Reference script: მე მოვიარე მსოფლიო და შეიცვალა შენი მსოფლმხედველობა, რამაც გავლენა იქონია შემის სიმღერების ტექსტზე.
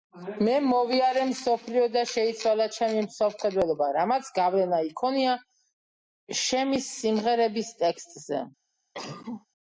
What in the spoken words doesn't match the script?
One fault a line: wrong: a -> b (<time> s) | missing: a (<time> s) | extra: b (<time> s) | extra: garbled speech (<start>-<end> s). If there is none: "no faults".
wrong: შენი -> ჩემი (2.8 s)